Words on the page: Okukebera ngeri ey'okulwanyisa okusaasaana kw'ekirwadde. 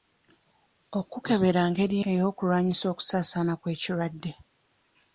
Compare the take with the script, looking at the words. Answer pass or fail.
pass